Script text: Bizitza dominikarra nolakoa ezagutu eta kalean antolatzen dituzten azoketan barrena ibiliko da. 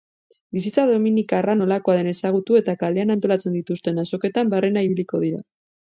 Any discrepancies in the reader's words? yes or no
yes